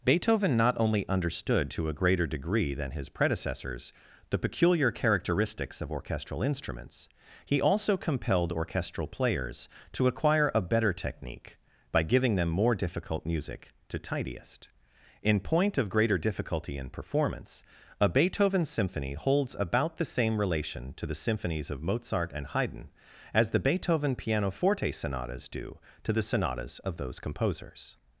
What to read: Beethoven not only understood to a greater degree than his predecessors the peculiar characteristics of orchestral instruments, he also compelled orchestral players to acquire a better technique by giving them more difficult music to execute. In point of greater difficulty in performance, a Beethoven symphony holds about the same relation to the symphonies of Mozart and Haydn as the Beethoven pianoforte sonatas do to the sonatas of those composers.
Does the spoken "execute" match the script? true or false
false